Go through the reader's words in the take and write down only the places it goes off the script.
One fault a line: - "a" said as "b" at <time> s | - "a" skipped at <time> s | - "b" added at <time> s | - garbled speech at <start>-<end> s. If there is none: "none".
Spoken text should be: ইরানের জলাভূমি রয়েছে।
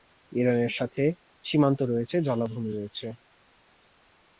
- "সাথে সীমান্ত রয়েছে" added at 0.7 s